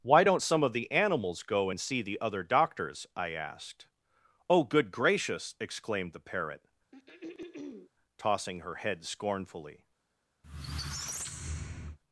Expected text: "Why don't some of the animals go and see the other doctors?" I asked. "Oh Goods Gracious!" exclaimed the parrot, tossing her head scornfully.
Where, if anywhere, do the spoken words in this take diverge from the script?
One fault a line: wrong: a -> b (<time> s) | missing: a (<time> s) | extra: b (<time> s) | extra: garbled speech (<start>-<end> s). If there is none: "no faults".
wrong: Goods -> Good (4.6 s)